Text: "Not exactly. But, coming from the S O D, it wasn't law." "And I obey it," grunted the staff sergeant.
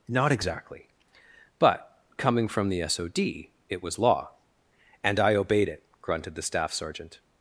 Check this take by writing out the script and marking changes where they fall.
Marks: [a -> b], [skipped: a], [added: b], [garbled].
"Not exactly. But, coming from the S O D, it [wasn't -> was] law." "And I [obey -> obeyed] it," grunted the staff sergeant.